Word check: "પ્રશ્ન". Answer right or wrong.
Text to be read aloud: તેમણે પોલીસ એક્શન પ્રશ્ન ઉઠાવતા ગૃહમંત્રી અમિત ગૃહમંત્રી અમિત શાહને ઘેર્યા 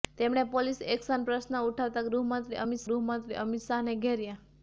right